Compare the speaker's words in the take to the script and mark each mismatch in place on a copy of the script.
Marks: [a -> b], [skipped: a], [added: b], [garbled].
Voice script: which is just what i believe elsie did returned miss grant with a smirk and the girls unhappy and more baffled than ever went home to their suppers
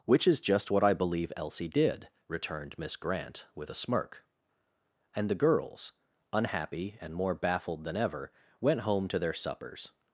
which is just what i believe elsie did returned miss grant with a smirk and the girls unhappy and more baffled than ever went home to their suppers